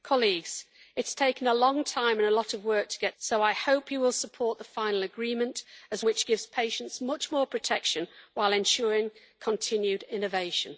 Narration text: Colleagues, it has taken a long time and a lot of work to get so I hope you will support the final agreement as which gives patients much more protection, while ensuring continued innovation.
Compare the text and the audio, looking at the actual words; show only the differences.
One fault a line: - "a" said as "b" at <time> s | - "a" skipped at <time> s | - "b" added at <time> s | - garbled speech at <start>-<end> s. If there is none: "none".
none